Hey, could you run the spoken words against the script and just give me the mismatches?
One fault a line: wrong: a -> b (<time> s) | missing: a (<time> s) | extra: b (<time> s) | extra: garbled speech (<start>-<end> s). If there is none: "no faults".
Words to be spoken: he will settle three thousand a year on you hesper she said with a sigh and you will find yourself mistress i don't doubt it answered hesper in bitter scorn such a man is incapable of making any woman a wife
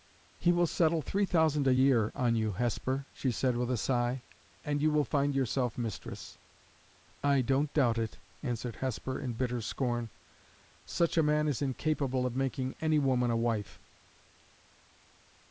no faults